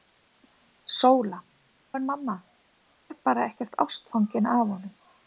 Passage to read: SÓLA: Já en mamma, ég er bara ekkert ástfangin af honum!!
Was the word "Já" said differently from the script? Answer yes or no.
yes